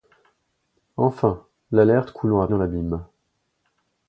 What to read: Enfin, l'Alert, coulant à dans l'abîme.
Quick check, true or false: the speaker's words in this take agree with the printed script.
true